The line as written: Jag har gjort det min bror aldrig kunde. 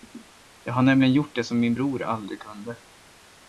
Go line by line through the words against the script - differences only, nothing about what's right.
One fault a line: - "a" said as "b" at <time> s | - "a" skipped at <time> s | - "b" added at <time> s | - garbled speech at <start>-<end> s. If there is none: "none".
- "nämligen" added at 0.8 s
- "som" added at 1.4 s